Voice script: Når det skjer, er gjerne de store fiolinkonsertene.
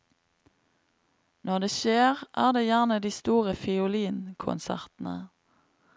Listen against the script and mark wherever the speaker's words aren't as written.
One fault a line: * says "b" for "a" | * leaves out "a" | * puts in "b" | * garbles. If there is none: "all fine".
* puts in "det"